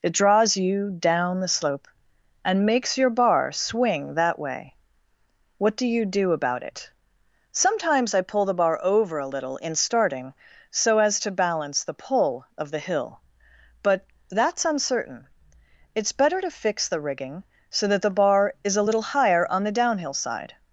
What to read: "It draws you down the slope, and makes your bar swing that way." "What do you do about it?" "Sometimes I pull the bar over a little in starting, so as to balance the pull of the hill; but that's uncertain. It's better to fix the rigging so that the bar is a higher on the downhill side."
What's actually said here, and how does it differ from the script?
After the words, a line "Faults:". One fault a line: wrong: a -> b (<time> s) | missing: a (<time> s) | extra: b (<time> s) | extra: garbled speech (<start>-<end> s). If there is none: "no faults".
"It draws you down the slope, and makes your bar swing that way." "What do you do about it?" "Sometimes I pull the bar over a little in starting, so as to balance the pull of the hill; but that's uncertain. It's better to fix the rigging so that the bar is a little higher on the downhill side."
Faults:
extra: little (18.9 s)